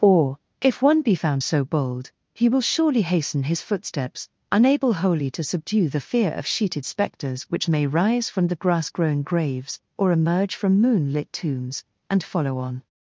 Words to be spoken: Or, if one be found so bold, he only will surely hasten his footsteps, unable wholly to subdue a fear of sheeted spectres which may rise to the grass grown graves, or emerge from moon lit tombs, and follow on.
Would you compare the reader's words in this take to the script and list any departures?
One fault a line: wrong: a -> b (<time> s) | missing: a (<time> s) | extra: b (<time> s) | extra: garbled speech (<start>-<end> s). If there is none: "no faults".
missing: only (2.5 s)
wrong: a -> the (5.9 s)
wrong: to -> from (8.3 s)